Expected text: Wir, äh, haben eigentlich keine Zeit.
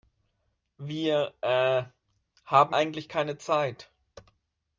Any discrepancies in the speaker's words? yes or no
no